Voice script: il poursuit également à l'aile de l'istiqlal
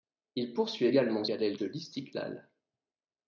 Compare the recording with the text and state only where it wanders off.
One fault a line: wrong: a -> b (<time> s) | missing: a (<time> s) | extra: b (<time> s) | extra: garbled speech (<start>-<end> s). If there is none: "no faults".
no faults